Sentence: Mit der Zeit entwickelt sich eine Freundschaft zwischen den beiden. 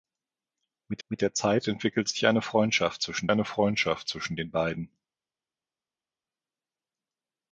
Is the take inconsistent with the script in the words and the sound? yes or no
yes